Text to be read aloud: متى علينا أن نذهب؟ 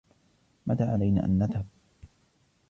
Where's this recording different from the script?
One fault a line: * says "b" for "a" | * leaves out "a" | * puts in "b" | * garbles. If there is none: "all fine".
all fine